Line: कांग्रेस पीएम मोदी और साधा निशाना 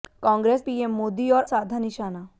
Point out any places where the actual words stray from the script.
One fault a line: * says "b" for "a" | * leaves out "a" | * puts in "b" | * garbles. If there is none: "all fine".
all fine